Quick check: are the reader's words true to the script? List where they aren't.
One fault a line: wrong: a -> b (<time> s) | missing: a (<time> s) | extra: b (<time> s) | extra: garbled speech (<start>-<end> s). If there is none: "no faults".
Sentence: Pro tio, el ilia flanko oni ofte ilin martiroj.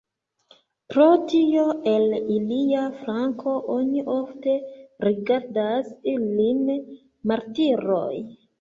extra: rigardas (5.1 s)